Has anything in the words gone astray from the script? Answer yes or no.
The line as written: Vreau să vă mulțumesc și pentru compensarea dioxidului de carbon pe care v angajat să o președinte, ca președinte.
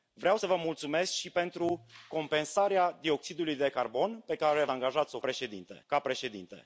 no